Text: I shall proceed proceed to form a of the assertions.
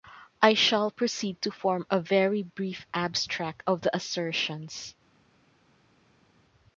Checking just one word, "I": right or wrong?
right